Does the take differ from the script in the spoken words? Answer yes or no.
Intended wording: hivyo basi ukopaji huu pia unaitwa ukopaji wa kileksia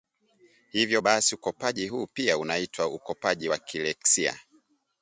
no